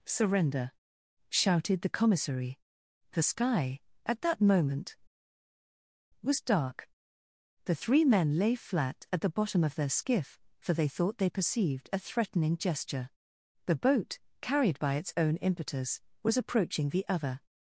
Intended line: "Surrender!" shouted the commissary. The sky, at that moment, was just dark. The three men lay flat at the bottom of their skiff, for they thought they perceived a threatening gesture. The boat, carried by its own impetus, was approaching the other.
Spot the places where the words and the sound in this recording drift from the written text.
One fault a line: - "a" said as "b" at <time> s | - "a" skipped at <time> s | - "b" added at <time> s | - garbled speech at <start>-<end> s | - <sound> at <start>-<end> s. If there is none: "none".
- "just" skipped at 6.4 s